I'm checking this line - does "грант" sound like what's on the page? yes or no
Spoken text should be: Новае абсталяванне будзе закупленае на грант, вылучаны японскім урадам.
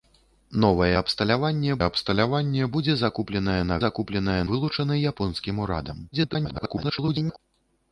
no